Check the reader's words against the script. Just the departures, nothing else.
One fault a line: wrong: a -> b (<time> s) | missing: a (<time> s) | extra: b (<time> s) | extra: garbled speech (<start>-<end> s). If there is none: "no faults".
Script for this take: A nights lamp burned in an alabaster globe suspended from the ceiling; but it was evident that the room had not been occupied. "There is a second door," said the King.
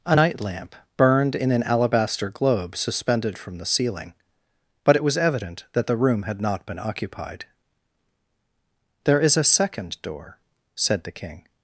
wrong: nights -> night (0.1 s)